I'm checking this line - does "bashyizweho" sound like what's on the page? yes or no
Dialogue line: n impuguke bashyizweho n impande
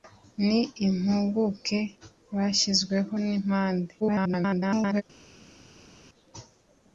yes